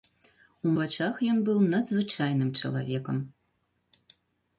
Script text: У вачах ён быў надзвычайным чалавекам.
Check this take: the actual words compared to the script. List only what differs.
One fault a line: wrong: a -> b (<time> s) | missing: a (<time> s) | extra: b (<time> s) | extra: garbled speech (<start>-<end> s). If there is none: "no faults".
no faults